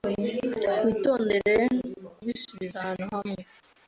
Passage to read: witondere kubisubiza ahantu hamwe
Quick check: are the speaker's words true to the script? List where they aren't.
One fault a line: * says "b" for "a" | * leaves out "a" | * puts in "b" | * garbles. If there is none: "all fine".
all fine